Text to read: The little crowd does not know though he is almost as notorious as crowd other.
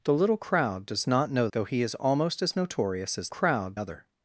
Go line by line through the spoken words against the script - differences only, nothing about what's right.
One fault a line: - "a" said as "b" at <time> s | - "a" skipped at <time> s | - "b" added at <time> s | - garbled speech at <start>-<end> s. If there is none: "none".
none